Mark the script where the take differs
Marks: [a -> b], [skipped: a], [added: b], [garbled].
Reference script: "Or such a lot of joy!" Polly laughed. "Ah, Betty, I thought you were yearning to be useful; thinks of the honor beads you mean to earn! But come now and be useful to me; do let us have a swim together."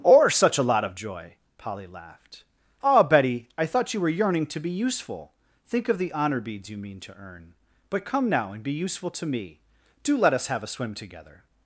"Or such a lot of joy!" Polly laughed. "Ah, Betty, I thought you were yearning to be useful; [thinks -> think] of the honor beads you mean to earn! But come now and be useful to me; do let us have a swim together."